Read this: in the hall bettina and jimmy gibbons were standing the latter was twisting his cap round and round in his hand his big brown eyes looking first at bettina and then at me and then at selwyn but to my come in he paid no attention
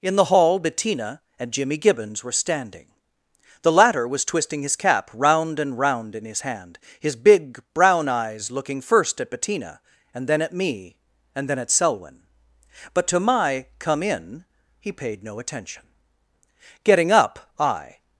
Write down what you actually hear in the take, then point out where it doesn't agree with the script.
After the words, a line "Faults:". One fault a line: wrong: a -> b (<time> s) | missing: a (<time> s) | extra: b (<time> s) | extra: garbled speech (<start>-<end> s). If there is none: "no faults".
in the hall bettina and jimmy gibbons were standing the latter was twisting his cap round and round in his hand his big brown eyes looking first at bettina and then at me and then at selwyn but to my come in he paid no attention getting up i
Faults:
extra: getting up i (16.8 s)